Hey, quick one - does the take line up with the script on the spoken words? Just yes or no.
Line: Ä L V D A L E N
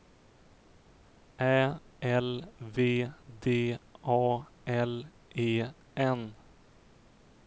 yes